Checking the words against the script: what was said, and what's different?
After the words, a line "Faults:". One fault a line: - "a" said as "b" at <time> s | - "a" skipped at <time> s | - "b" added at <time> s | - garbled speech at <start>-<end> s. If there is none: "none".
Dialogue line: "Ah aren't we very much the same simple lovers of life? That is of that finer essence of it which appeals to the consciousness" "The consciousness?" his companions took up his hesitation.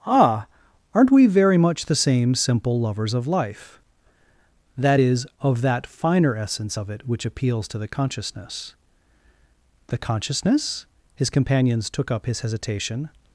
"Ah aren't we very much the same simple lovers of life? That is of that finer essence of it which appeals to the consciousness" "The consciousness?" his companions took up his hesitation.
Faults:
none